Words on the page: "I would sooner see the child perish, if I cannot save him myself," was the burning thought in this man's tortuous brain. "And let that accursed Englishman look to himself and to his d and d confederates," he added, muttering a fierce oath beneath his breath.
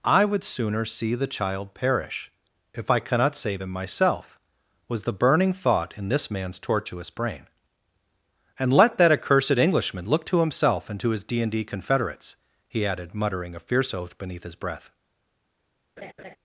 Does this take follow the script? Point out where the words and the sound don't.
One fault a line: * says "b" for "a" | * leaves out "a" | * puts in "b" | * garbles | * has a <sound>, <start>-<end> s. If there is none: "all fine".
* has a laugh, 16.0-16.4 s